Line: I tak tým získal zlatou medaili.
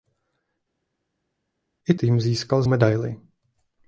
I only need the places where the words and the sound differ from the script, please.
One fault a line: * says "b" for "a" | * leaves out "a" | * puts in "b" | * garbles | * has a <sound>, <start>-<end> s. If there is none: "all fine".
* leaves out "tak"
* leaves out "zlatou"